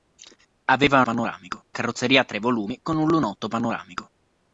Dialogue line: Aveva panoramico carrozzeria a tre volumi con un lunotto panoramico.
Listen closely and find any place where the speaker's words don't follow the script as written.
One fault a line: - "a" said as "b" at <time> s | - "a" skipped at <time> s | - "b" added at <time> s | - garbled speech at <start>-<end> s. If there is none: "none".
none